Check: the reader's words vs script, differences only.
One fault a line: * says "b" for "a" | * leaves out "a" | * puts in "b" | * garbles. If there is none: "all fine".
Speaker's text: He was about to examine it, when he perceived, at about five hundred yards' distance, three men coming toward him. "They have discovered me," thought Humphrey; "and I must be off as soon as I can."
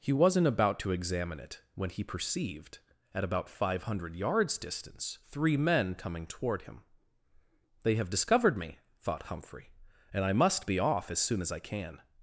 * says "wasn't" for "was"